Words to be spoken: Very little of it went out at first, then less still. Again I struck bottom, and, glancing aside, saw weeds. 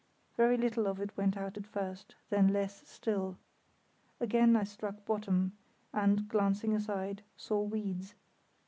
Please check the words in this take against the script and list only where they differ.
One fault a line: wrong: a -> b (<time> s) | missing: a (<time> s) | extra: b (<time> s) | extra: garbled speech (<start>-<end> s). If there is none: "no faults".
no faults